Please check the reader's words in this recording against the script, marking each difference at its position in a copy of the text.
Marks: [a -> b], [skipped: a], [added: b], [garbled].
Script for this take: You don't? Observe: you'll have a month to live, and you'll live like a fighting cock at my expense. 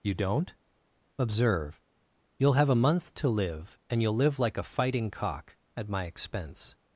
You don't? Observe: you'll have a month to live, and you'll live like a fighting cock at my expense.